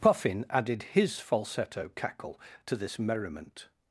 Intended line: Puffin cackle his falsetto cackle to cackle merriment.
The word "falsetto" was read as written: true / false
true